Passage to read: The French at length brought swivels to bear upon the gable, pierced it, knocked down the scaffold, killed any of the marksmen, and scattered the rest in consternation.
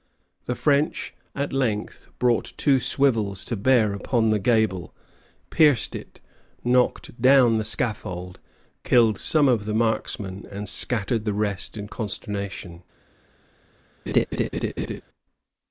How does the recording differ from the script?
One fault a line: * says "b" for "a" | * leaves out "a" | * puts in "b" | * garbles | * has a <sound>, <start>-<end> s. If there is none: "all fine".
* puts in "two"
* says "some" for "any"
* has a laugh, 14.1-15.0 s